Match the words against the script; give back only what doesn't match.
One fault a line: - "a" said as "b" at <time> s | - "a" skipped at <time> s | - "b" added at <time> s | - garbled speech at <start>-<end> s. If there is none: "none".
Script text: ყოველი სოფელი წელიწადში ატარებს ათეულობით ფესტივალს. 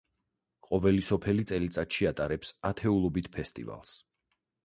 none